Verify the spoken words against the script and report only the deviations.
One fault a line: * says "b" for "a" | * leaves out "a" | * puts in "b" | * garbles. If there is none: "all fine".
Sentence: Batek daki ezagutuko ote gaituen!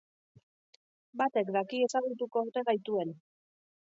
all fine